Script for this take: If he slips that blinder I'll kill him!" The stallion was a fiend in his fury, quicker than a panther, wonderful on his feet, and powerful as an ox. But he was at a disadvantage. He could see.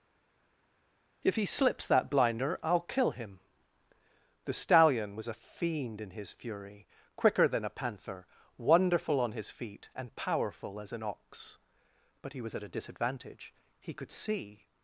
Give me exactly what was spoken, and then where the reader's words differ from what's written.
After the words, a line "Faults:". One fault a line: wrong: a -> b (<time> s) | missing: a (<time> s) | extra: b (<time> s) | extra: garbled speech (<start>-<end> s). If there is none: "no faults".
If he slips that blinder I'll kill him!" The stallion was a fiend in his fury, quicker than a panther, wonderful on his feet, and powerful as an ox. But he was at a disadvantage. He could see.
Faults:
no faults